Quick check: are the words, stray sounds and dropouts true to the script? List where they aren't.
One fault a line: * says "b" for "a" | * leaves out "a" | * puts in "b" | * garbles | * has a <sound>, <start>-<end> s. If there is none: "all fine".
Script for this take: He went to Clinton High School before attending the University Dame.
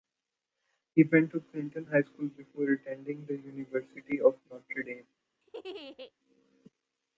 * puts in "of Notre"
* has a laugh, 5.4-6.1 s